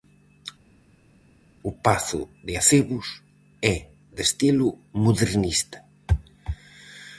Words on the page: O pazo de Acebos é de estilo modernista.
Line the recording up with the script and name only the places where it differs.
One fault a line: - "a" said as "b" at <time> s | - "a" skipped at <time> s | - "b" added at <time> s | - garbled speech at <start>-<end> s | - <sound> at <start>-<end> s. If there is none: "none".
none